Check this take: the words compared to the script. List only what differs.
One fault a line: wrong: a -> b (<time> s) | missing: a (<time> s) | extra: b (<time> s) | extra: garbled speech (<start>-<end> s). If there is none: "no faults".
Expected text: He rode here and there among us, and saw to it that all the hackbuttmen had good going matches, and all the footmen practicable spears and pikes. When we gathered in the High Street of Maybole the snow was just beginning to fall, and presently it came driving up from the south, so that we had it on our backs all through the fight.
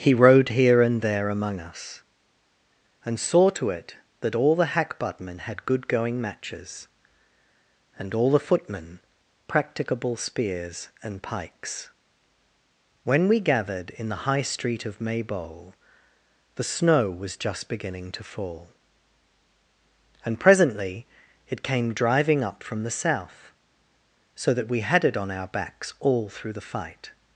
no faults